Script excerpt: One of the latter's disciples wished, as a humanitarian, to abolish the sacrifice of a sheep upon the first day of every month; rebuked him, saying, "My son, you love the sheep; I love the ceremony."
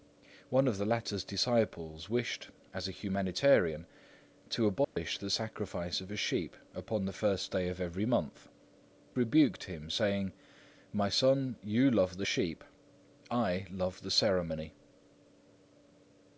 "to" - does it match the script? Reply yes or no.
yes